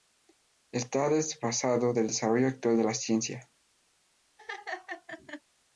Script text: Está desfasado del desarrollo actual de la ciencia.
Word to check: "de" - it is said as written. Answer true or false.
true